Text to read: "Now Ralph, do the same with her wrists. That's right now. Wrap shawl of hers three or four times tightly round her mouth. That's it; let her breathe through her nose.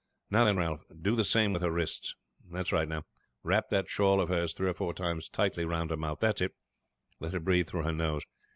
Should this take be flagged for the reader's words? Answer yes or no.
yes